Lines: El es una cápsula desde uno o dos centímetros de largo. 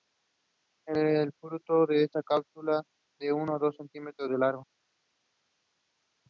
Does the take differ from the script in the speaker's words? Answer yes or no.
yes